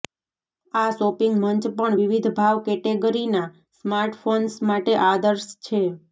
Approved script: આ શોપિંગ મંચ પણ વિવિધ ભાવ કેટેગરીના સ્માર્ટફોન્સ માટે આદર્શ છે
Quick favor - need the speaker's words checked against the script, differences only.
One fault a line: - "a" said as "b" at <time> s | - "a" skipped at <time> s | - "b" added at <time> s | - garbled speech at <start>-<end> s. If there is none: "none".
none